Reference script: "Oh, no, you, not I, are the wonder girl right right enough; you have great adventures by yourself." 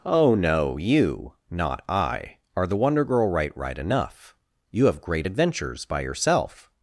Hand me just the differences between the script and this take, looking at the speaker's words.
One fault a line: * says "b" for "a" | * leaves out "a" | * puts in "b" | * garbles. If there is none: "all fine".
all fine